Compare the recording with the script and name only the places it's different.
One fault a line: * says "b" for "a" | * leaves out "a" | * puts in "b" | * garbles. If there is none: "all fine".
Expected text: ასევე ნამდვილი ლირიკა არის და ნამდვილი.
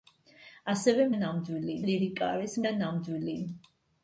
all fine